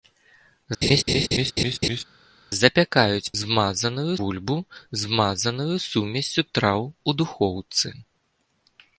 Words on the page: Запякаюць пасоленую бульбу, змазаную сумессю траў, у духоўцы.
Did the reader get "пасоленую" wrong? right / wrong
wrong